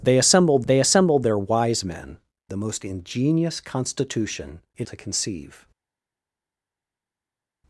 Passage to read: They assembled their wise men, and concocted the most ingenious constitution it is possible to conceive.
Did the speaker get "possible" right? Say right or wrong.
wrong